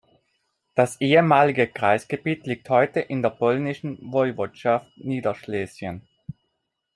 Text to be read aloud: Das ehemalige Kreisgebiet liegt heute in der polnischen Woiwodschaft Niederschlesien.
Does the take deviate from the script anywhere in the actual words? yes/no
no